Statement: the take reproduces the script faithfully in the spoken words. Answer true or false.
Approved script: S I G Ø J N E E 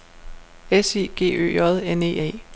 true